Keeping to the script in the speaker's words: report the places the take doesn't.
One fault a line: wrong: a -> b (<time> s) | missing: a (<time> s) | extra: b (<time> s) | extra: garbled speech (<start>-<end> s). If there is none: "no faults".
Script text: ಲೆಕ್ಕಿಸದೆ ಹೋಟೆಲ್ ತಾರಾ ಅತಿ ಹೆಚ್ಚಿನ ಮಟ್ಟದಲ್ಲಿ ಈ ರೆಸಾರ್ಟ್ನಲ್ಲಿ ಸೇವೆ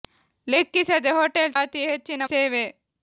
missing: ತಾರಾ (1.5 s)
missing: ಮಟ್ಟದಲ್ಲಿ ಈ ರೆಸಾರ್ಟ್ನಲ್ಲಿ (2.2 s)